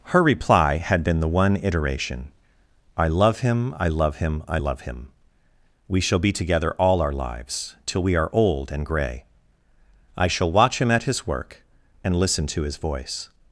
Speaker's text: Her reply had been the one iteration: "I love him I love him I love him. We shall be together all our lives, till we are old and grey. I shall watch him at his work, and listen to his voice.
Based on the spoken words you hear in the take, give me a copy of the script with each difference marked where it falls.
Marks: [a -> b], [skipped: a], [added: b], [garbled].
Her reply had been the one iteration: "I love him I love him I love him. We shall be together all our lives, till we are old and grey. I shall watch him at his work, and listen to his voice.